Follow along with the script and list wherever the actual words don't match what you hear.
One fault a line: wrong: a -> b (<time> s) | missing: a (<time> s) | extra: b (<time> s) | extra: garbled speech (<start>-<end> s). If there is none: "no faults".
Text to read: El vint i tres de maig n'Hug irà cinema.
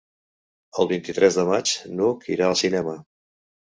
extra: al (2.5 s)